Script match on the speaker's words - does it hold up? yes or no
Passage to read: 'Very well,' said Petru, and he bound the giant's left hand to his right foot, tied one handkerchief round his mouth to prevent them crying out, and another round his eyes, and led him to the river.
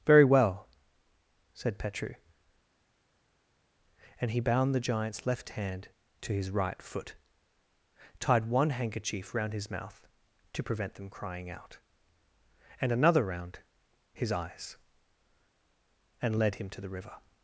yes